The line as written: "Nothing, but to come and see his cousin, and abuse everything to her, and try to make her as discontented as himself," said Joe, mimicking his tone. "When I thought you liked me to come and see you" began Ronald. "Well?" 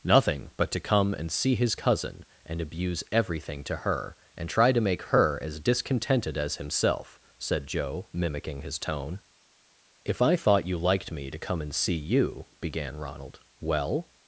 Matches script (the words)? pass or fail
fail